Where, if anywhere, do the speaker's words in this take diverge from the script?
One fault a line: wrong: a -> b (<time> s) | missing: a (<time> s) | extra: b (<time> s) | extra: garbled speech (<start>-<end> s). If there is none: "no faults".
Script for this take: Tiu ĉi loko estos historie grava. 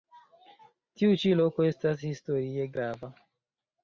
wrong: estos -> estas (1.7 s)